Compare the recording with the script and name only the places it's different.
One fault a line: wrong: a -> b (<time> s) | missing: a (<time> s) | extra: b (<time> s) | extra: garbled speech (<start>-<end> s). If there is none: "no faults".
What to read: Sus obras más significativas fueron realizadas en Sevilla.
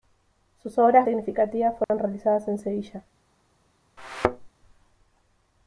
missing: más (1.1 s)